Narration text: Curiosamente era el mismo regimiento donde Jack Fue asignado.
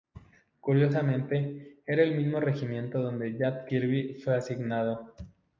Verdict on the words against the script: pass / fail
fail